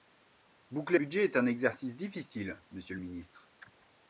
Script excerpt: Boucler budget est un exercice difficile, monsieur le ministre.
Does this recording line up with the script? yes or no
yes